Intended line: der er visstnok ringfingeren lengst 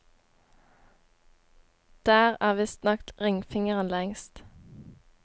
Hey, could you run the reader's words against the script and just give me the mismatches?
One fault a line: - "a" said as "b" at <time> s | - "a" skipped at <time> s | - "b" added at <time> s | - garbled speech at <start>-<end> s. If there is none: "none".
none